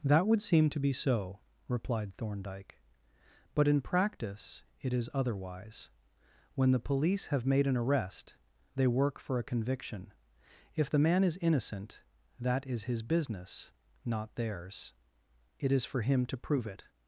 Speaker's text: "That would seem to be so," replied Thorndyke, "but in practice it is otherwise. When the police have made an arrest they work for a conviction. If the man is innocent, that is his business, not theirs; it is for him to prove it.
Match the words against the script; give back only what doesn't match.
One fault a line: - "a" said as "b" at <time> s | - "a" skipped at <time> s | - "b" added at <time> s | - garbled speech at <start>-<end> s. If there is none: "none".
none